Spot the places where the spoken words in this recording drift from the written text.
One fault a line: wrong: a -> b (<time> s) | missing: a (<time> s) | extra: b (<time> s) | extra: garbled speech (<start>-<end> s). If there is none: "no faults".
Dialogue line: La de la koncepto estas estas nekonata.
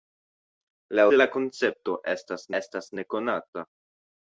no faults